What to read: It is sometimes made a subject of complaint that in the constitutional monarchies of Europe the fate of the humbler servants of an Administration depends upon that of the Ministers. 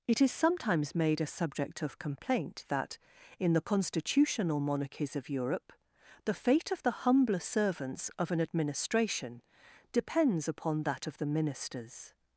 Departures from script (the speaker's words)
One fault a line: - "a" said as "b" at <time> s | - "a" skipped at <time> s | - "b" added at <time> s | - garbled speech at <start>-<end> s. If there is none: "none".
none